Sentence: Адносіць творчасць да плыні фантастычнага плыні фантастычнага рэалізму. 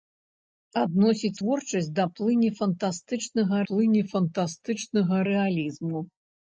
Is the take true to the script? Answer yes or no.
yes